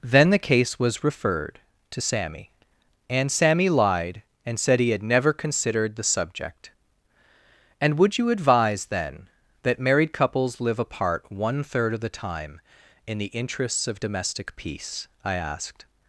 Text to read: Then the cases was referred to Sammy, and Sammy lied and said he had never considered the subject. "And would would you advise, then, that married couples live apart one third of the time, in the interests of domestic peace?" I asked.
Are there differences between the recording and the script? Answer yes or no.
yes